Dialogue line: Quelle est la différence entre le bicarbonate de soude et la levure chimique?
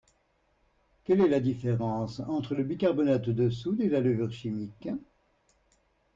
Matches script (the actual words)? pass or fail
pass